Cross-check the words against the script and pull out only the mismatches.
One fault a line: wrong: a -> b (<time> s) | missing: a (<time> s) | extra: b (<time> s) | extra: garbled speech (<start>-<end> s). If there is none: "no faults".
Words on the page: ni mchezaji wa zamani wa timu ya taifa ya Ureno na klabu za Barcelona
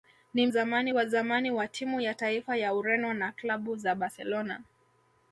wrong: mchezaji -> zamani (0.5 s)